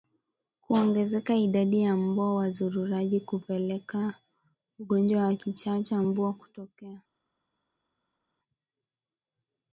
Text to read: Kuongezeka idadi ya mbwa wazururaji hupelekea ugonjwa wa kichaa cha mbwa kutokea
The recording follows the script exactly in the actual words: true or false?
true